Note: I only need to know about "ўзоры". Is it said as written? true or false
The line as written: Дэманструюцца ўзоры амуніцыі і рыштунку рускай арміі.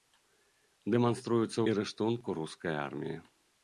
false